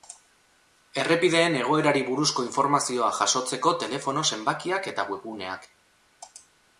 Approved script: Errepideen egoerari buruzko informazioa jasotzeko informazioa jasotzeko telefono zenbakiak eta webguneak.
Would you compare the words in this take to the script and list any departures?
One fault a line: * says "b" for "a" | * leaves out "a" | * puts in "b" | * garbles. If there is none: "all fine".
* leaves out "informazioa jasotzeko"